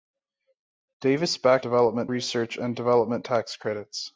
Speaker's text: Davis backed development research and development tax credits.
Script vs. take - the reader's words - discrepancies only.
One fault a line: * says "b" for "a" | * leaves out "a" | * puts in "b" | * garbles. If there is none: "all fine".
all fine